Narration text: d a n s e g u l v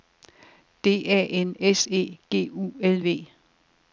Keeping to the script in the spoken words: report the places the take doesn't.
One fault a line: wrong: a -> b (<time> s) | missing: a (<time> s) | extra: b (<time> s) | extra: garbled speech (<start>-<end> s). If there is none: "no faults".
no faults